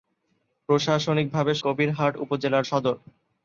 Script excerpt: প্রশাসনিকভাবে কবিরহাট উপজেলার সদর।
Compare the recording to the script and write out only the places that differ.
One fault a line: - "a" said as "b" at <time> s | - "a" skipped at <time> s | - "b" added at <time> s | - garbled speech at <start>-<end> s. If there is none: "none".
none